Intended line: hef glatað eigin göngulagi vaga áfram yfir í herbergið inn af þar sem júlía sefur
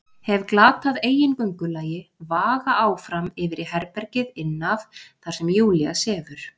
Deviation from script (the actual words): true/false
false